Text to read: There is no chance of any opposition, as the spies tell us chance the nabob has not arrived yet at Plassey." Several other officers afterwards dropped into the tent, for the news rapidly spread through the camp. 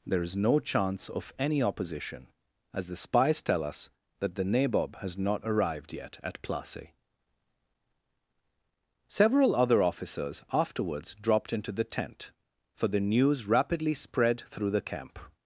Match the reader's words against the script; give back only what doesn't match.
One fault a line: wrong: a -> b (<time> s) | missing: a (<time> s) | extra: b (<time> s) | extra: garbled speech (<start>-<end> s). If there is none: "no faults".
wrong: chance -> that (4.2 s)